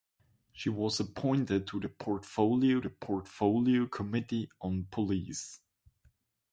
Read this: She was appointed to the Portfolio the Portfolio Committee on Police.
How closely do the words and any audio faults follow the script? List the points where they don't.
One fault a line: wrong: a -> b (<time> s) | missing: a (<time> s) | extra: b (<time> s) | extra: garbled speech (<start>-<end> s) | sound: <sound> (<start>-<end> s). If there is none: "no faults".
no faults